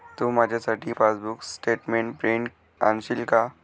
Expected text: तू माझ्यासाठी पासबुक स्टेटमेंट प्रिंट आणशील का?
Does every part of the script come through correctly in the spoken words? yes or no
yes